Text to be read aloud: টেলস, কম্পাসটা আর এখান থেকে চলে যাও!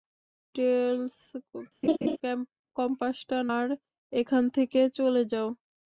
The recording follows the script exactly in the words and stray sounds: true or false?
false